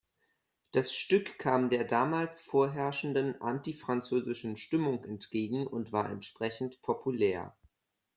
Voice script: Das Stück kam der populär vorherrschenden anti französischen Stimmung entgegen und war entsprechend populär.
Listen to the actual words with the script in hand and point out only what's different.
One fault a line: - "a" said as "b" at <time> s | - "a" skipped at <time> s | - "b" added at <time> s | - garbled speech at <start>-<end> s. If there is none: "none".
- "populär" said as "damals" at 1.8 s